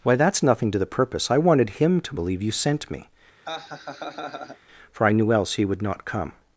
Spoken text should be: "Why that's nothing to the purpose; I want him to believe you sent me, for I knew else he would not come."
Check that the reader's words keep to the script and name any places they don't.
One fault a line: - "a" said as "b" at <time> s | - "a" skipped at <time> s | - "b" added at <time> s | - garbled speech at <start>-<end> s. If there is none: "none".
- "want" said as "wanted" at 1.4 s